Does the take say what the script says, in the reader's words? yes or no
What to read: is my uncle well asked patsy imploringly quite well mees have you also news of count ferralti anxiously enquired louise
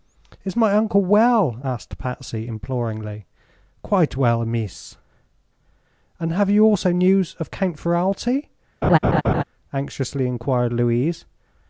no